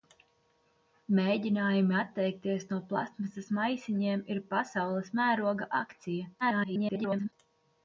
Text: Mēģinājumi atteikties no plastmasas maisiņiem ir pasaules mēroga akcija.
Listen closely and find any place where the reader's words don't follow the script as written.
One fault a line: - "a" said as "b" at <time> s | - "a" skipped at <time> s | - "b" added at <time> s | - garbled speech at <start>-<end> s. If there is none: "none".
- garbled speech at 6.4-7.3 s